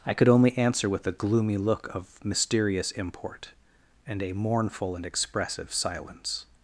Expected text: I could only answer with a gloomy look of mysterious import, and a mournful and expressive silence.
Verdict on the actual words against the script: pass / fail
pass